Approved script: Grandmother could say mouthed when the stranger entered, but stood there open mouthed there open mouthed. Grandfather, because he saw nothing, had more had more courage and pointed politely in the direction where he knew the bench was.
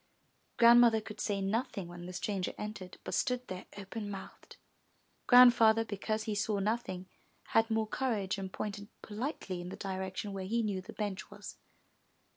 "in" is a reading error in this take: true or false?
false